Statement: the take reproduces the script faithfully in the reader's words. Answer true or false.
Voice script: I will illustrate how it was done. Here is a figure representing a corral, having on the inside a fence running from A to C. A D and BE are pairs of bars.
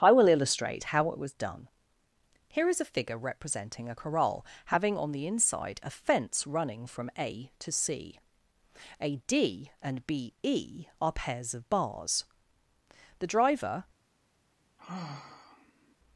false